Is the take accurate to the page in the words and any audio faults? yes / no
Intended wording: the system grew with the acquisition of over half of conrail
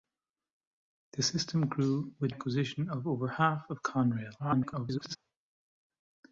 no